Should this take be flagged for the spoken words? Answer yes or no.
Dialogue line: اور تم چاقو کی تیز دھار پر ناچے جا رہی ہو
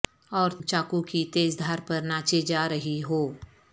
yes